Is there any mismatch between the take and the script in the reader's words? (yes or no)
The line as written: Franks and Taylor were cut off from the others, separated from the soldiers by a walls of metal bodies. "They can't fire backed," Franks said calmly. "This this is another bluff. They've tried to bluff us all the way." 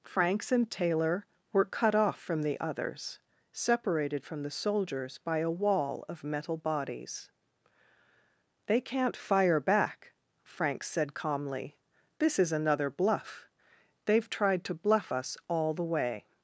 yes